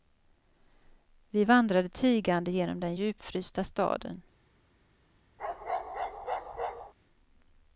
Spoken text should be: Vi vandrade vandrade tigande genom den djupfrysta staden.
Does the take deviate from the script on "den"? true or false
false